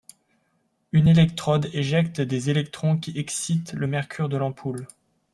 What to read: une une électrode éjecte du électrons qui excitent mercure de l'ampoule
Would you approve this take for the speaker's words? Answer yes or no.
no